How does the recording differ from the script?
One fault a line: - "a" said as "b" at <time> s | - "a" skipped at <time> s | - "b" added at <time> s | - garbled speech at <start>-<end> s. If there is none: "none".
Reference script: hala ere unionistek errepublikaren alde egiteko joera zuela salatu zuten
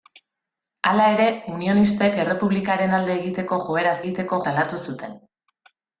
- "zuela" said as "egiteko" at 4.0 s